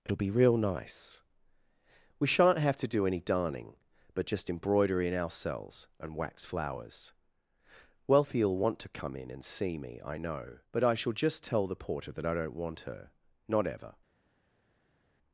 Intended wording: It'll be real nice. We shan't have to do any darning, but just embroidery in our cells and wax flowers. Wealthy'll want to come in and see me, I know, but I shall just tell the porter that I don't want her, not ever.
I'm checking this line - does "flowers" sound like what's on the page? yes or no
yes